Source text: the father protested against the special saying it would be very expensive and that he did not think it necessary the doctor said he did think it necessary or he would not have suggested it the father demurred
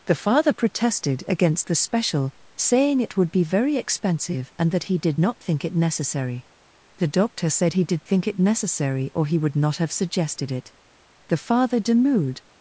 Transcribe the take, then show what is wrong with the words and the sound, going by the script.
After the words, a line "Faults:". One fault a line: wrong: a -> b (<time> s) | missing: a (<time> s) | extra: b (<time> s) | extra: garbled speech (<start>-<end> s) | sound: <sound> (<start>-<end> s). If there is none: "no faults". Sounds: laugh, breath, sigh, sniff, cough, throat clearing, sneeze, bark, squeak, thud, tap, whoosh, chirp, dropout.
the father protested against the special saying it would be very expensive and that he did not think it necessary the doctor said he did think it necessary or he would not have suggested it the father demurred
Faults:
no faults